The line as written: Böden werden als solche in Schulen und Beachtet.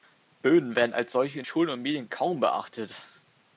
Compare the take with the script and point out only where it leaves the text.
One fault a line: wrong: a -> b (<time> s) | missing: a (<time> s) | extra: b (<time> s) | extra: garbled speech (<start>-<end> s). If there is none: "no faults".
extra: Medien kaum (1.8 s)